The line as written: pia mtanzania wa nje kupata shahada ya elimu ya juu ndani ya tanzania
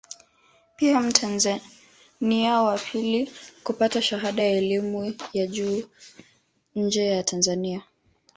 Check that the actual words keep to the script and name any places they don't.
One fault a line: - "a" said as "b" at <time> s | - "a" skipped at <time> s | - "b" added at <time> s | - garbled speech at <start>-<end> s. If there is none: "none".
- "nje" said as "pili" at 2.8 s
- "ndani" said as "nje" at 6.8 s